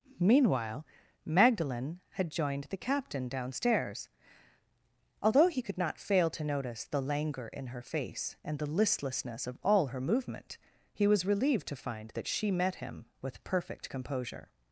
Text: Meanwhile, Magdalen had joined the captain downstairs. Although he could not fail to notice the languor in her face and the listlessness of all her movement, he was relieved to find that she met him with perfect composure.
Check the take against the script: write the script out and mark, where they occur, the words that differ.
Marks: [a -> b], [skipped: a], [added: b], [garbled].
Meanwhile, Magdalen had joined the captain downstairs. Although he could not fail to notice the languor in her face and the listlessness of all her movement, he was relieved to find that she met him with perfect composure.